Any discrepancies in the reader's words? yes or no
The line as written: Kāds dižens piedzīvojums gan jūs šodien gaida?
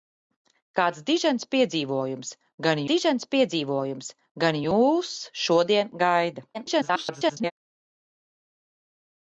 yes